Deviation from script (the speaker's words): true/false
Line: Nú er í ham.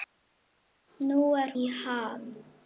false